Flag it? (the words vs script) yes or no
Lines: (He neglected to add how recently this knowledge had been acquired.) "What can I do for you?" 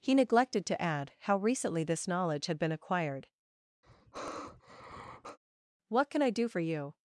no